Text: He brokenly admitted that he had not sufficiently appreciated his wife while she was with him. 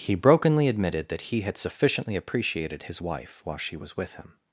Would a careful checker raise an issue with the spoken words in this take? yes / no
yes